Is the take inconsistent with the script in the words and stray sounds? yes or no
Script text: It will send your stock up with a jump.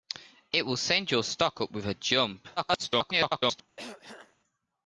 yes